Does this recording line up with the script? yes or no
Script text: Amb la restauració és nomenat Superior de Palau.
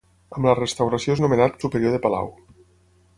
yes